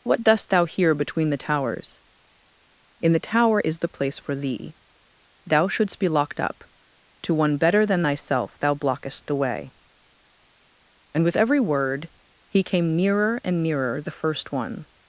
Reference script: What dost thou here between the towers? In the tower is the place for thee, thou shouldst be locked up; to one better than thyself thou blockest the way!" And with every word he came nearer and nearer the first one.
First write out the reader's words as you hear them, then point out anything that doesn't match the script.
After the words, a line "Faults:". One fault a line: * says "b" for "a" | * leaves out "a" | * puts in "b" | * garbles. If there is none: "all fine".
What dost thou here between the towers? In the tower is the place for thee, thou shouldst be locked up; to one better than thyself thou blockest the way!" And with every word he came nearer and nearer the first one.
Faults:
all fine